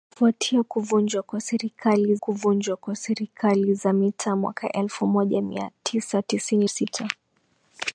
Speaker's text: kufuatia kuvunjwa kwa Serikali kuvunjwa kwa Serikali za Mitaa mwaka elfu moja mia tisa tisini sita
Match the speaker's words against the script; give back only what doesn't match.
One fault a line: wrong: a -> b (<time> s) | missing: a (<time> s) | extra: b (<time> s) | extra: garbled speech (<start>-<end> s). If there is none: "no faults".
no faults